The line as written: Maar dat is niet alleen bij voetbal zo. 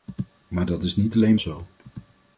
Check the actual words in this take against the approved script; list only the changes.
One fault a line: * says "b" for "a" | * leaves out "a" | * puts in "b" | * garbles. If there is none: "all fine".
* leaves out "bij voetbal"